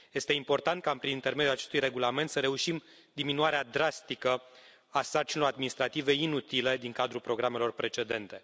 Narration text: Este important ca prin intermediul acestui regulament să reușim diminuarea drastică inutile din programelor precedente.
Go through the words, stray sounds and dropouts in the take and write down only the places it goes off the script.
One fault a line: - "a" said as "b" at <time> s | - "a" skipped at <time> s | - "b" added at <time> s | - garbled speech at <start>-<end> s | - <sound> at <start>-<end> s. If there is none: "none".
- "a sarcinilor administrative" added at 4.9 s
- "cadrul" added at 6.9 s